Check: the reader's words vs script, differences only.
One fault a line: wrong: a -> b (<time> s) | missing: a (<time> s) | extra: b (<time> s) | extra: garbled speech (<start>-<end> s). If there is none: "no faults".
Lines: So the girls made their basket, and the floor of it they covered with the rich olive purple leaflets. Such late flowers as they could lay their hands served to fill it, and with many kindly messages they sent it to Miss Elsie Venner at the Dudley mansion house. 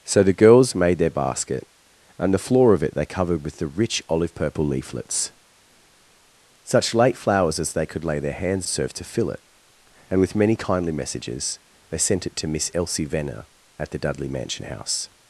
no faults